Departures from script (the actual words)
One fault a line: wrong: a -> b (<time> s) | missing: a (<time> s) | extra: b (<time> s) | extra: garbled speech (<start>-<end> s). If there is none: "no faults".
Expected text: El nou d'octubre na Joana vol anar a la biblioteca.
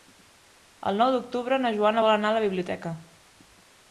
no faults